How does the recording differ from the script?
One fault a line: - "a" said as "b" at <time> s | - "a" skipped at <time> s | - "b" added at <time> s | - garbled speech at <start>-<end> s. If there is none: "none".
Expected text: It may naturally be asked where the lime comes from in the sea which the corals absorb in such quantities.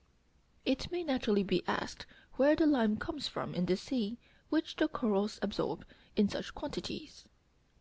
none